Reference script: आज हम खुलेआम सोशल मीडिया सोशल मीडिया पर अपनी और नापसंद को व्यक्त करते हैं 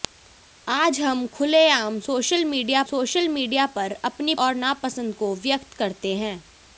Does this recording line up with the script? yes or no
yes